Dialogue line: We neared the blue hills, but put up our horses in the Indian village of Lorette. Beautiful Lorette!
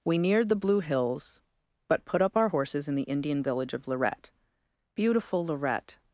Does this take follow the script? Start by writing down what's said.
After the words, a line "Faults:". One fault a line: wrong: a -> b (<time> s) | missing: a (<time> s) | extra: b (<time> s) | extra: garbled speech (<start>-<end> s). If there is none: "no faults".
We neared the blue hills, but put up our horses in the Indian village of Lorette. Beautiful Lorette!
Faults:
no faults